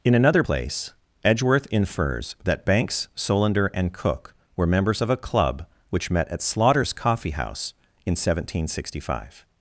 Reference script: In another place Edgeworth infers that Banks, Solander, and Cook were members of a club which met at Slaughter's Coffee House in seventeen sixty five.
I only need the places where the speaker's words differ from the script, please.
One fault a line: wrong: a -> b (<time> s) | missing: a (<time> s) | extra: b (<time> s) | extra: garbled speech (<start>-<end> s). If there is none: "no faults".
no faults